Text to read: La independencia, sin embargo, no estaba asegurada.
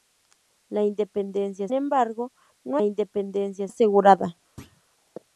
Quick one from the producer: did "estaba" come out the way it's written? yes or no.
no